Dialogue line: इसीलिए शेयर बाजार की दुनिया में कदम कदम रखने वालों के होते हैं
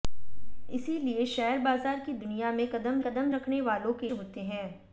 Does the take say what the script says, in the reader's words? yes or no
yes